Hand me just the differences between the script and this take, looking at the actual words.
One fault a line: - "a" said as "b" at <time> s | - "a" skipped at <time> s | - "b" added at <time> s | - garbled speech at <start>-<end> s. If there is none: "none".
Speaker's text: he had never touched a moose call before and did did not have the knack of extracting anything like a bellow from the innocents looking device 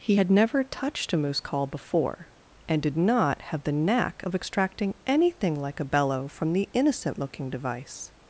- "did" skipped at 2.9 s
- "innocents" said as "innocent" at 6.7 s